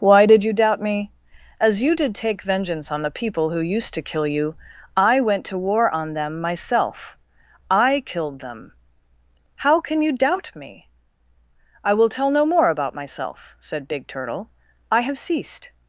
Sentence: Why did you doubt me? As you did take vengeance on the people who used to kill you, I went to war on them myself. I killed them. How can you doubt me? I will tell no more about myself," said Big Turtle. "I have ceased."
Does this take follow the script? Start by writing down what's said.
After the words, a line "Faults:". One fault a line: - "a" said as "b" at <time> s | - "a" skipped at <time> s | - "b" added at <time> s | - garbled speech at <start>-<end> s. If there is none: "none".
Why did you doubt me? As you did take vengeance on the people who used to kill you, I went to war on them myself. I killed them. How can you doubt me? I will tell no more about myself," said Big Turtle. "I have ceased."
Faults:
none